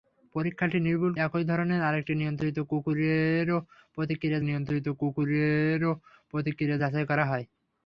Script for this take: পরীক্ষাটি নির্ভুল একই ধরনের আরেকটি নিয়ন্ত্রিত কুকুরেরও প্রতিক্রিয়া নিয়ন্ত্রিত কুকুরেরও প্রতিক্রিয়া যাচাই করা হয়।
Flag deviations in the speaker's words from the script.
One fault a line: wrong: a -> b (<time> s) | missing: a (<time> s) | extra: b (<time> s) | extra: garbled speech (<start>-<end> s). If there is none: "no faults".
no faults